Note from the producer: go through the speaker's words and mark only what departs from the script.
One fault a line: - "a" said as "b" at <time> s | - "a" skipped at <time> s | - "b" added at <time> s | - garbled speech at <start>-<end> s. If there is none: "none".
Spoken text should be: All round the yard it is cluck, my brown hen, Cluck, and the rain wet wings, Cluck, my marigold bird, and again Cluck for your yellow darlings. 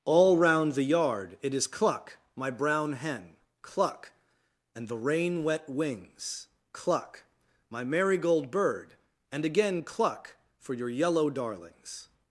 none